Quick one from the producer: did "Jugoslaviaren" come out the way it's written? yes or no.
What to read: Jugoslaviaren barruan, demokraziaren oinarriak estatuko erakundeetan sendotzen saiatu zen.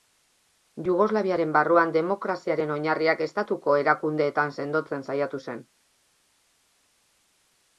yes